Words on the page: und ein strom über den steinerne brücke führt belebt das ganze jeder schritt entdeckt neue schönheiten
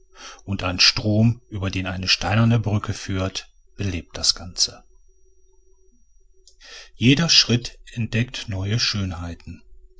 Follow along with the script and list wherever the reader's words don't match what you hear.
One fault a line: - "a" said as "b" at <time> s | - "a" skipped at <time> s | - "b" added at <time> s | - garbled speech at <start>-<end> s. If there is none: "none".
- "eine" added at 1.9 s